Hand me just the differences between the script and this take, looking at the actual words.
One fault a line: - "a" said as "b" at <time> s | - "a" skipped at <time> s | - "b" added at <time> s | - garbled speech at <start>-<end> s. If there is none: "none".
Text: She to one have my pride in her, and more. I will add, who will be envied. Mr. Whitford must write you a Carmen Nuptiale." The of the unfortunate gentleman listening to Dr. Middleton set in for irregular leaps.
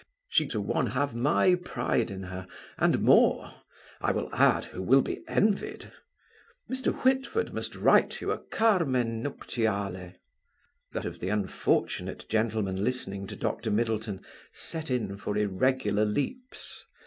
none